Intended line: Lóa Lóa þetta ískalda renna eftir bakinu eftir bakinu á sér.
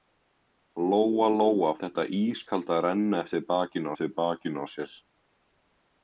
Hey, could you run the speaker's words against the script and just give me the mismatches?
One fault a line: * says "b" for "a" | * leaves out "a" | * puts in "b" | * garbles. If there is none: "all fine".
all fine